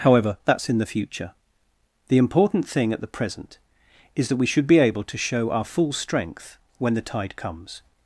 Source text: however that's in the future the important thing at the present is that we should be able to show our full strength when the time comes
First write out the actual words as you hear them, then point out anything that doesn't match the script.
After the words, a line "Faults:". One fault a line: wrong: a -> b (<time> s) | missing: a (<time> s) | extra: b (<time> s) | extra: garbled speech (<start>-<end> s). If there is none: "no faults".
however that's in the future the important thing at the present is that we should be able to show our full strength when the tide comes
Faults:
wrong: time -> tide (7.0 s)